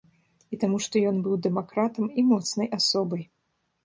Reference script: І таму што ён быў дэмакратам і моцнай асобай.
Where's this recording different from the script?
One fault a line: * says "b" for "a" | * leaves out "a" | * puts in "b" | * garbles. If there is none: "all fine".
all fine